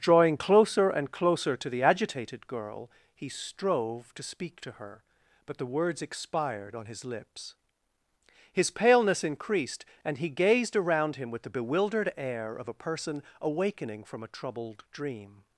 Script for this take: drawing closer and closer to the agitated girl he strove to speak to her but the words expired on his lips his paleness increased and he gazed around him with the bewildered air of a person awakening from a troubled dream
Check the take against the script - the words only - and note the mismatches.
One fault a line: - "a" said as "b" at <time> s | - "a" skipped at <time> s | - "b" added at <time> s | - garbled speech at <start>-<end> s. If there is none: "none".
none